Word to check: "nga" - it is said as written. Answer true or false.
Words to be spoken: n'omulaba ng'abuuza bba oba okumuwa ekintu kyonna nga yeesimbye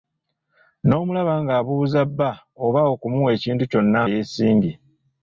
false